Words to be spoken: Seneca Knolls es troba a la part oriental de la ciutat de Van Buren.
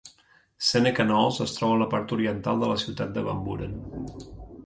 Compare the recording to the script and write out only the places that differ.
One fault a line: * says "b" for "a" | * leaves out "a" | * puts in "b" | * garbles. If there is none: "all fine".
all fine